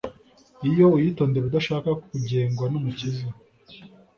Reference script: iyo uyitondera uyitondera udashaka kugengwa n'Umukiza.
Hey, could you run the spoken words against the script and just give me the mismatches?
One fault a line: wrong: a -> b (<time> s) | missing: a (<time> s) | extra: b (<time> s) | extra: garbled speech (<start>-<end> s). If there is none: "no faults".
missing: uyitondera (1.4 s)